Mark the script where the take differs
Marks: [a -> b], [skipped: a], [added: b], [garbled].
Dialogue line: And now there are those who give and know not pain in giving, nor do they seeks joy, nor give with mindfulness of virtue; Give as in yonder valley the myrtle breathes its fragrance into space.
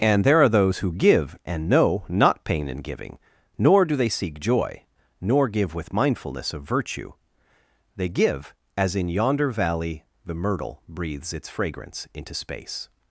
And [skipped: now] there are those who give and know not pain in giving, nor do they [seeks -> seek] joy, nor give with mindfulness of virtue; [added: They] Give as in yonder valley the myrtle breathes its fragrance into space.